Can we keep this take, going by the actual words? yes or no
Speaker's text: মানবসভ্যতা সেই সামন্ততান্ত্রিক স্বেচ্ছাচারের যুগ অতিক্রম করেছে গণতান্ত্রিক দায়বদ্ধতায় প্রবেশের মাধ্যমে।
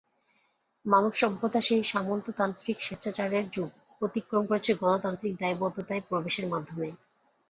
yes